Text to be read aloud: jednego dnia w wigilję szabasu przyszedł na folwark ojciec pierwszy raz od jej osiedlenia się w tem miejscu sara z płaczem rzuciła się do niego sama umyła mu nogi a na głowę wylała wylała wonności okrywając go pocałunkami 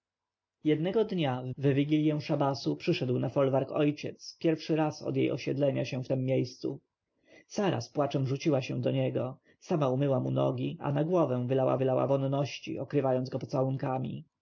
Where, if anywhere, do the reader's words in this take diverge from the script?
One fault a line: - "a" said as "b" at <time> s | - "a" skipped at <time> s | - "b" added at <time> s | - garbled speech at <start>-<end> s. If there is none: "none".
none